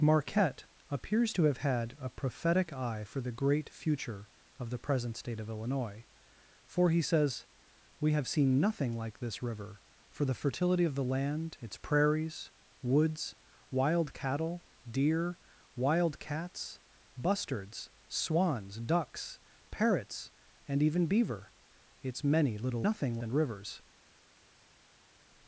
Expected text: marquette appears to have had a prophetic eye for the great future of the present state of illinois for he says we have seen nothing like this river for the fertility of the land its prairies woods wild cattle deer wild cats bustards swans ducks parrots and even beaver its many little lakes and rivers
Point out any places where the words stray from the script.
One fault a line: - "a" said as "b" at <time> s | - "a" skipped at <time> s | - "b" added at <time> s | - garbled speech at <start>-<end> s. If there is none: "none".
- "lakes" said as "nothing" at 22.8 s